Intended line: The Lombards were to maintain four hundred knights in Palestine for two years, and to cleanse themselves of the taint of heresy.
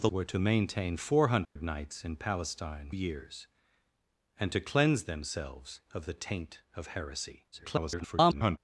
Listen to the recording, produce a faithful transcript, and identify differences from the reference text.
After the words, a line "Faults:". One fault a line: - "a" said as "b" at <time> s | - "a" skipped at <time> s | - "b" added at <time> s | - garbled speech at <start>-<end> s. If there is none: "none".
The Were to maintain four hundred knights in Palestine years, and to cleanse themselves of the taint of heresy. [garbled]
Faults:
- "Lombards" skipped at 0.1 s
- "for two" skipped at 2.9 s
- garbled speech at 7.5-8.6 s